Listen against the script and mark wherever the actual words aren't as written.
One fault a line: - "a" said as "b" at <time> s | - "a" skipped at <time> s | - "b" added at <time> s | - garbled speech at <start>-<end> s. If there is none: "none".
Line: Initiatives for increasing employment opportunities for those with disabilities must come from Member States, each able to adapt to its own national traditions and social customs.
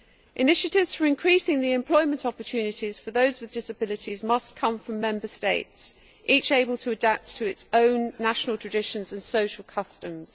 - "the" added at 1.6 s